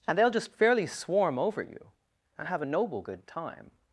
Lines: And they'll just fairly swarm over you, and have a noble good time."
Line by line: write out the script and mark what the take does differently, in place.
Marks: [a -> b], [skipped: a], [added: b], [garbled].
And they'll just fairly swarm over you, and have a noble good time."